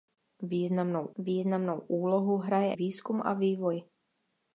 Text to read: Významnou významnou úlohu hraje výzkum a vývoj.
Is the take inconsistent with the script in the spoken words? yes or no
no